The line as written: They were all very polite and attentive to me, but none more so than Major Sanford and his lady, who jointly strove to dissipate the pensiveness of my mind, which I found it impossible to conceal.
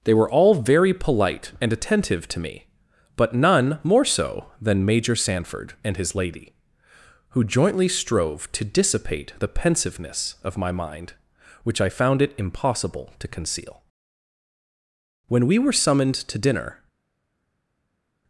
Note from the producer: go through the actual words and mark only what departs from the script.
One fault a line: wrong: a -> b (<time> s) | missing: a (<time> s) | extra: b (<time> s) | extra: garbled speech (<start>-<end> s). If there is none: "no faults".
extra: When we were summoned to dinner (15.3 s)